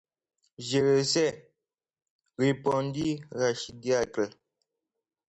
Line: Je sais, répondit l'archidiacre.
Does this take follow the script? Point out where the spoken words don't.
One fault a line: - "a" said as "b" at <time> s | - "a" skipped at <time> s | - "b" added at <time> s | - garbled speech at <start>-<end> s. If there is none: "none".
- "le" added at 0.8 s